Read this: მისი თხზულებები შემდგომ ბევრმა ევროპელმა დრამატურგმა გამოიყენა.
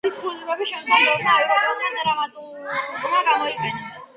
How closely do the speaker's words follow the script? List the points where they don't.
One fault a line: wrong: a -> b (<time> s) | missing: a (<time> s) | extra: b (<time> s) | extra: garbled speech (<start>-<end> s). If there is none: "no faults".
no faults